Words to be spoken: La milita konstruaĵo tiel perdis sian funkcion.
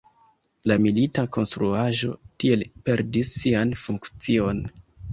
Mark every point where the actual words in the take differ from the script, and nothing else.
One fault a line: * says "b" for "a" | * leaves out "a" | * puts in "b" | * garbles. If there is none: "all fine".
all fine